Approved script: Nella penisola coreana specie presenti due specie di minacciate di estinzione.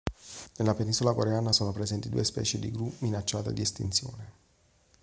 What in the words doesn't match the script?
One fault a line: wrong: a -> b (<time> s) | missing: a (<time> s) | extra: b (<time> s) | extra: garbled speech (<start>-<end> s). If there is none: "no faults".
wrong: specie -> sono (1.5 s)
extra: gru (2.7 s)